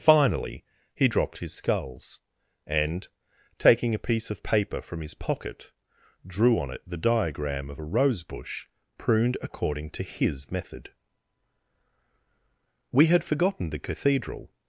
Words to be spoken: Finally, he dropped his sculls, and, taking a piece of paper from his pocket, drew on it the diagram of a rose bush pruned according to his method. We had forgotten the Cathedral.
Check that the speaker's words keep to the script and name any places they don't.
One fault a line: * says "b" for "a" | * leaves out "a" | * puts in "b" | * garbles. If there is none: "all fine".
all fine